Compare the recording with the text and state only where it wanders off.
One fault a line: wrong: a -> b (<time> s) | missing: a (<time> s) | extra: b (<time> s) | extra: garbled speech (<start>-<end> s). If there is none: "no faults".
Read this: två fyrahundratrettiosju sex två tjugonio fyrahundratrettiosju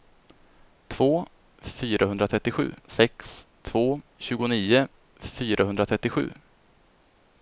no faults